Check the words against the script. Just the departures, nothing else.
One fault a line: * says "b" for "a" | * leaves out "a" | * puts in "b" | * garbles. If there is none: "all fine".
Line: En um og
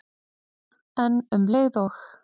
* puts in "leið"